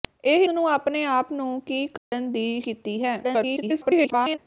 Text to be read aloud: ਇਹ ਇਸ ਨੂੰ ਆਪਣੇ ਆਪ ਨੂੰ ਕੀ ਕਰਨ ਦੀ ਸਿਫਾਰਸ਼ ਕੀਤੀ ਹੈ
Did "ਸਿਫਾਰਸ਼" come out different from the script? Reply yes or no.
yes